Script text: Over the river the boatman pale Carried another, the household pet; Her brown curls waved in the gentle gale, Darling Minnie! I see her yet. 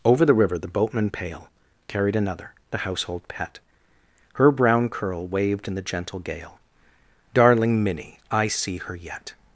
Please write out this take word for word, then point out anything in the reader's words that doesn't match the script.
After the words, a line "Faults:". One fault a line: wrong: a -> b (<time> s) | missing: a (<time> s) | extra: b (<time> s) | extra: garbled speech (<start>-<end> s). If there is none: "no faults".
Over the river the boatman pale Carried another, the household pet; Her brown curl waved in the gentle gale, Darling Minnie! I see her yet.
Faults:
wrong: curls -> curl (4.9 s)